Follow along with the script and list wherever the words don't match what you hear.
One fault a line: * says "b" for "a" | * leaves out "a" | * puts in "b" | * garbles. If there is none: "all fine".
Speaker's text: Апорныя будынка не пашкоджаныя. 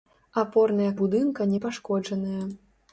all fine